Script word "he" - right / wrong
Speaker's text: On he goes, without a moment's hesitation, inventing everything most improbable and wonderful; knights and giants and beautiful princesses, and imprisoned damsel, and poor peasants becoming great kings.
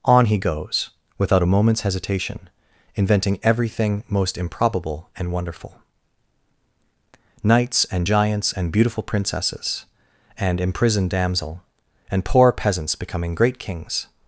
right